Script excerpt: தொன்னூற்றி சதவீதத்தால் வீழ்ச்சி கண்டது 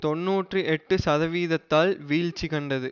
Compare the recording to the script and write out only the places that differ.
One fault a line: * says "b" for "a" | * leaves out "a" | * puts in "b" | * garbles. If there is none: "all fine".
* puts in "எட்டு"